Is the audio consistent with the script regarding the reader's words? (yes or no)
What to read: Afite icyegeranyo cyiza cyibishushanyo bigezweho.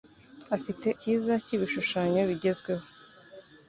no